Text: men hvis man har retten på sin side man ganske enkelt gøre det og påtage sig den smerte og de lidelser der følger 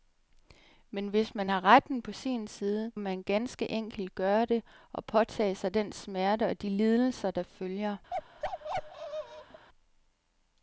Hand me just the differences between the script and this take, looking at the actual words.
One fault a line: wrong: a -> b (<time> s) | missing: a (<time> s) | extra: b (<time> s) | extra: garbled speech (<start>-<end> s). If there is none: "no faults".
no faults